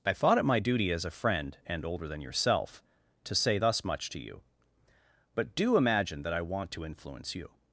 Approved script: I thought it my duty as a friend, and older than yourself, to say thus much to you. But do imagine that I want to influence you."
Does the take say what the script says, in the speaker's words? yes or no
yes